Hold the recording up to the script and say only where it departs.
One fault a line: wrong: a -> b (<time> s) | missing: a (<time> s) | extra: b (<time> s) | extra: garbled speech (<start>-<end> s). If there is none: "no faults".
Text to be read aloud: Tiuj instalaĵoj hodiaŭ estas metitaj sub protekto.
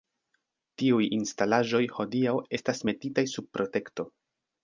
no faults